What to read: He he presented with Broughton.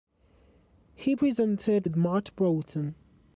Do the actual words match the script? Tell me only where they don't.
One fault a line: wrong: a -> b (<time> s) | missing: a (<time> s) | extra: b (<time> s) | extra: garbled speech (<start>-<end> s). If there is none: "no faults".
missing: he (1.1 s)
extra: Matt (1.9 s)